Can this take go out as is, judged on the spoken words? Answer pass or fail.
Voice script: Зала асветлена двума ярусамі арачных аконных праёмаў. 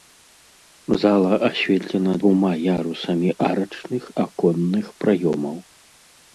pass